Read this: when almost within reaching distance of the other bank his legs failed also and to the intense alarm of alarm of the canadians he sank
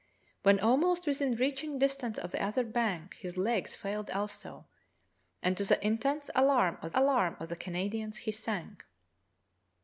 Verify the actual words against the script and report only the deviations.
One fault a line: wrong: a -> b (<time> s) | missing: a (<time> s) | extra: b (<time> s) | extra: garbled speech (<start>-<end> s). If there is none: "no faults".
no faults